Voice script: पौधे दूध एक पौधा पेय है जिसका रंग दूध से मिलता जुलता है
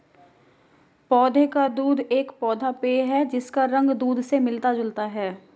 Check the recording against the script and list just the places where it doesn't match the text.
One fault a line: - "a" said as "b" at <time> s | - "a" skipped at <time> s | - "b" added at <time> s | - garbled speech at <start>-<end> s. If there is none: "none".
- "का" added at 1.5 s